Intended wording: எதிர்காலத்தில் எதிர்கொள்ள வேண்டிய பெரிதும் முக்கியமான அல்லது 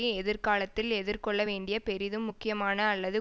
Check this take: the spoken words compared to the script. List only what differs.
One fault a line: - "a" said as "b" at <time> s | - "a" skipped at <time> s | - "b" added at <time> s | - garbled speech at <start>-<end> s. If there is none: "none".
none